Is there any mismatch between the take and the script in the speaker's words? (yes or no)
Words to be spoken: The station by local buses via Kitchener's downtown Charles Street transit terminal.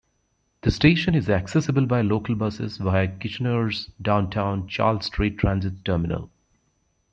yes